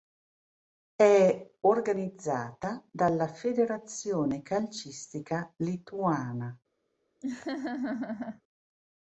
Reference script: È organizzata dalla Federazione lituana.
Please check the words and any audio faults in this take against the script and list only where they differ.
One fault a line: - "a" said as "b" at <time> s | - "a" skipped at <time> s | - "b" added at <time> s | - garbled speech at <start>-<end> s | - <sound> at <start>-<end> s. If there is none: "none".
- "calcistica" added at 4.4 s
- laugh at 7.2-8.4 s